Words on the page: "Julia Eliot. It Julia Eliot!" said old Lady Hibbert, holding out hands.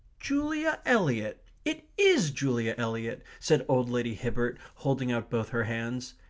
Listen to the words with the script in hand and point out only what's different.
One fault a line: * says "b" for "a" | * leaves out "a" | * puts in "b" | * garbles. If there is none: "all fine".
* puts in "IS"
* puts in "both her"